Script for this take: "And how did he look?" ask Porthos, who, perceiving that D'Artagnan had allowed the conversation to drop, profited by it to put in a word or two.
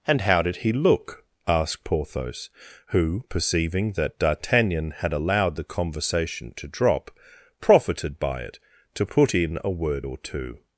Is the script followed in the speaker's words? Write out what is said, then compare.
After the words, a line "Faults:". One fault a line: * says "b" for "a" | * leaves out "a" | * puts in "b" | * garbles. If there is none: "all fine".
"And how did he look?" asked Porthos, who, perceiving that D'Artagnan had allowed the conversation to drop, profited by it to put in a word or two.
Faults:
* says "asked" for "ask"